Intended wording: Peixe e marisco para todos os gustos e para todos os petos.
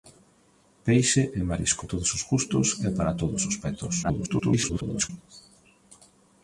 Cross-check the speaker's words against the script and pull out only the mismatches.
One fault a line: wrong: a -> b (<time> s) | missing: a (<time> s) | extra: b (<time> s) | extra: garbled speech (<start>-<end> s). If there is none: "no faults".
missing: para (1.8 s)
extra: garbled speech (4.0-5.1 s)